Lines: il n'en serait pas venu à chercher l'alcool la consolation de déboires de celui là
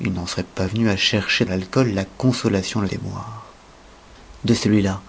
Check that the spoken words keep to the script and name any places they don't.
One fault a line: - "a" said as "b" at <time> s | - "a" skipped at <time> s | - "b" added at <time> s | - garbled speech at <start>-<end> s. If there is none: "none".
none